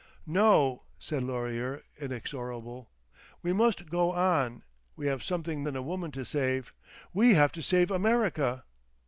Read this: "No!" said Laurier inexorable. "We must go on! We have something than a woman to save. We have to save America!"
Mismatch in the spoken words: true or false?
false